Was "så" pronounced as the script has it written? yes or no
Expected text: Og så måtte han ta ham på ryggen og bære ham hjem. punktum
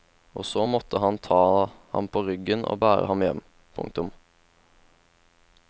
yes